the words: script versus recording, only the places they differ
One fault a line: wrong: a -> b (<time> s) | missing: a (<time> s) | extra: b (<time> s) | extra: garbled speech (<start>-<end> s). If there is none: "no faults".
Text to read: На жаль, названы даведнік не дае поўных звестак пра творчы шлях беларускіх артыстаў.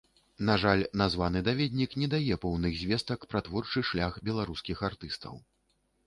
no faults